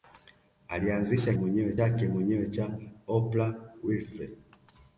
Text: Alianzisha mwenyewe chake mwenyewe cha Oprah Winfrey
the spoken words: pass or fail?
pass